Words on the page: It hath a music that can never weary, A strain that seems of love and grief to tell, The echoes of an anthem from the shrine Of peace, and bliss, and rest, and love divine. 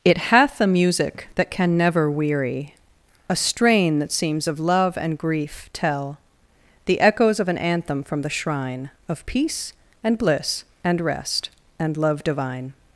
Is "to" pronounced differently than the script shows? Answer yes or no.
yes